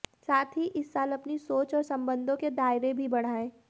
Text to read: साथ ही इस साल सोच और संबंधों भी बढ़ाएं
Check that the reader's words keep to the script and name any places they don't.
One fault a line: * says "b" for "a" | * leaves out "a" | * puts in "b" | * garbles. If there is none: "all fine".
* puts in "अपनी"
* puts in "के दायरे"